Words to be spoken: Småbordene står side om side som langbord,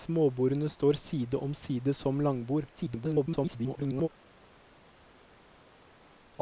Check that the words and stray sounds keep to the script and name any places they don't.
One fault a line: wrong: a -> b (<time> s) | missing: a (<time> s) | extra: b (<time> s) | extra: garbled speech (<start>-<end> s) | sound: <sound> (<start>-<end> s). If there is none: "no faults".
extra: garbled speech (2.8-4.1 s)